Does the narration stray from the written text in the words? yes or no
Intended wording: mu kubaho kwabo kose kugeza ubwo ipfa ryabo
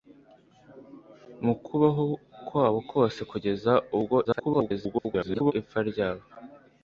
yes